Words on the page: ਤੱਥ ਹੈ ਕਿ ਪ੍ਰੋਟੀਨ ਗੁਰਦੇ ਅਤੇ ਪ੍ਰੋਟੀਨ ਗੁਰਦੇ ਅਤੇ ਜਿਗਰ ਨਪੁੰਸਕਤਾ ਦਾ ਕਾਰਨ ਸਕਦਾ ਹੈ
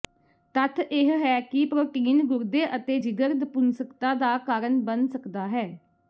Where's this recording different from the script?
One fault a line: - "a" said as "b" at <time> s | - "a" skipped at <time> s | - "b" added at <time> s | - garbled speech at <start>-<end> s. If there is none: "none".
- "ਇਹ" added at 0.8 s
- "ਪ੍ਰੋਟੀਨ ਗੁਰਦੇ ਅਤੇ" skipped at 3.0 s
- "ਬਣ" added at 4.9 s